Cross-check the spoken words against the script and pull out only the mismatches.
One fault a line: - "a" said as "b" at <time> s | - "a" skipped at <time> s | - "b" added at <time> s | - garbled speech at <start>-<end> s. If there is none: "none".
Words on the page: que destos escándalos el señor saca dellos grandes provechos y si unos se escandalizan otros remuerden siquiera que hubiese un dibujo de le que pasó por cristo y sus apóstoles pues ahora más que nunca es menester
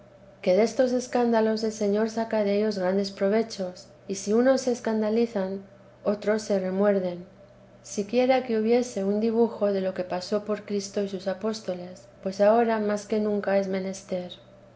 - "se" added at 6.4 s
- "le" said as "lo" at 9.8 s